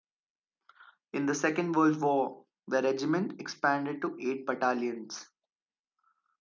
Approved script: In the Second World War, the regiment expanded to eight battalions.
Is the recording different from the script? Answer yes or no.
no